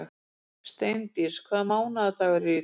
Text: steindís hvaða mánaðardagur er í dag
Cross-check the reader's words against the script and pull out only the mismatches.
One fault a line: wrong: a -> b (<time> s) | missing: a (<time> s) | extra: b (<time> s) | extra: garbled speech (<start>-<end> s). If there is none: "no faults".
no faults